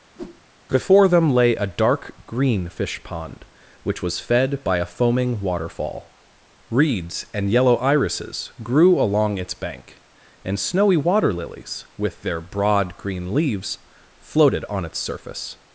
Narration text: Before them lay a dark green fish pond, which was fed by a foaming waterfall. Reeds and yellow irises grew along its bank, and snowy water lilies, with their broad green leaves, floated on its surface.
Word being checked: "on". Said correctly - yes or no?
yes